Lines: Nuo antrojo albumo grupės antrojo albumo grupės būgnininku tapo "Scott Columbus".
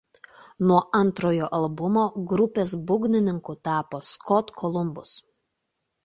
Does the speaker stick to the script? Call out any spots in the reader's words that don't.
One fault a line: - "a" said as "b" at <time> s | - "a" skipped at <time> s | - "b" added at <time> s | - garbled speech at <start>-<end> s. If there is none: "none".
- "antrojo albumo grupės" skipped at 2.7 s